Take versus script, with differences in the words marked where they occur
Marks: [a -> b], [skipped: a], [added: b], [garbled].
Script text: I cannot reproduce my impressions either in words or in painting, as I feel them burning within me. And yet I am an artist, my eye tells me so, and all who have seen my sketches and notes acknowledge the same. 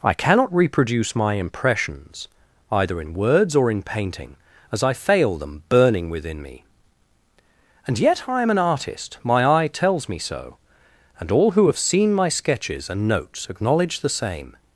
I cannot reproduce my impressions either in words or in painting, as I [feel -> fail] them burning within me. And yet I am an artist, my eye tells me so, and all who have seen my sketches and notes acknowledge the same.